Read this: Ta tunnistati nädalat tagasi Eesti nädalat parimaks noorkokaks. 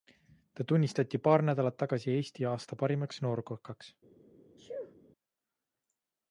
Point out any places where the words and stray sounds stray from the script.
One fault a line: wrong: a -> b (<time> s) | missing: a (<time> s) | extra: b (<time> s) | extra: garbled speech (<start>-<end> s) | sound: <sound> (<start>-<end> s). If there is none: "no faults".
extra: paar (1.3 s)
wrong: nädalat -> aasta (2.5 s)
sound: sneeze (4.6-5.0 s)